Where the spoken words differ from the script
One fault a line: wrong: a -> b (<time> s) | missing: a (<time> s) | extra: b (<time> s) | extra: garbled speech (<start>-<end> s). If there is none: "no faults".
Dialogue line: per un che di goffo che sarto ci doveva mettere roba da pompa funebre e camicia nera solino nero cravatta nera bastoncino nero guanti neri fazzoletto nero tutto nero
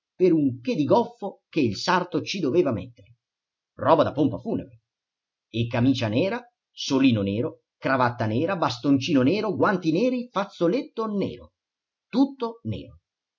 extra: il (1.6 s)